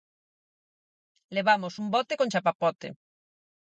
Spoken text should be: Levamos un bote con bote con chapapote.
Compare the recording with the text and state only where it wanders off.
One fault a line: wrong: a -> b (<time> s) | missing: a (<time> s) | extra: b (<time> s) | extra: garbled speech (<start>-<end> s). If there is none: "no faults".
missing: bote con (2.3 s)